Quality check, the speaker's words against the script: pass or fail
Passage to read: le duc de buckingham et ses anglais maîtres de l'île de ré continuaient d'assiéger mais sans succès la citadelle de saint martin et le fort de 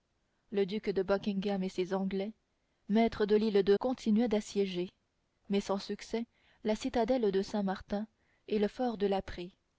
fail